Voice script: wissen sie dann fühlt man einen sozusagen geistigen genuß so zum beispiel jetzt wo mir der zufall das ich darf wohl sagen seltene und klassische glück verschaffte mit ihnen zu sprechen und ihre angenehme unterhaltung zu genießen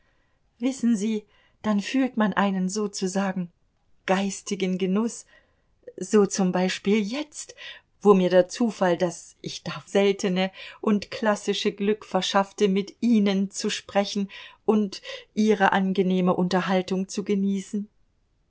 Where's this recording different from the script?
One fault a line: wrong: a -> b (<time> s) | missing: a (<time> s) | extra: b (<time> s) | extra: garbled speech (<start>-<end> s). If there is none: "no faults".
missing: wohl sagen (9.9 s)